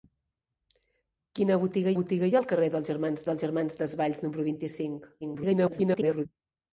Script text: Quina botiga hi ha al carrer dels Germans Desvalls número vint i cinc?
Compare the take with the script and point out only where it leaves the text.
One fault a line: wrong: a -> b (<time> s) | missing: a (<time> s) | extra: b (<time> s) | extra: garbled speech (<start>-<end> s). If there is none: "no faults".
extra: botiga (2.0 s)
extra: dels Germans (3.3 s)
extra: garbled speech (5.2-6.3 s)